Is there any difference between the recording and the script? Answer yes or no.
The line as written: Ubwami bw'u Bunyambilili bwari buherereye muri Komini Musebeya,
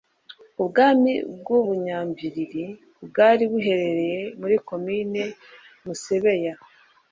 no